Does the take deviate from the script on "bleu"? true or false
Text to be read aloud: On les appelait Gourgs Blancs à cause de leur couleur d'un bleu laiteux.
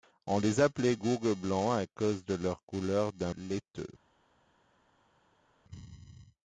true